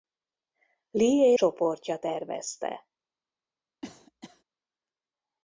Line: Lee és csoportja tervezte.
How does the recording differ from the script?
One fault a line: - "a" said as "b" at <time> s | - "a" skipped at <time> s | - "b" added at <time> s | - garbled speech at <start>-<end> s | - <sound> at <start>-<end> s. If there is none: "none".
- "és" skipped at 1.3 s
- cough at 3.8-4.4 s